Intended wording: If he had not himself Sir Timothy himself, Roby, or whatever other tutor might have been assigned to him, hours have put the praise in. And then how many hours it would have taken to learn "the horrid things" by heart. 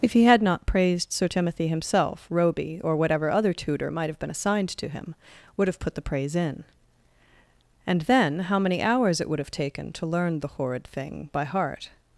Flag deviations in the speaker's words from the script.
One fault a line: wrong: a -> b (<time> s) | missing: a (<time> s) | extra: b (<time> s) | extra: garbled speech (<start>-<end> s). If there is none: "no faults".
wrong: himself -> praised (0.7 s)
wrong: hours -> would (5.6 s)
wrong: things -> thing (10.9 s)